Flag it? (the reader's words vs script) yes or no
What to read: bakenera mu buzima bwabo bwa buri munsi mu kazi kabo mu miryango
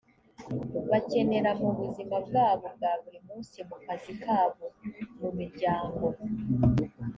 no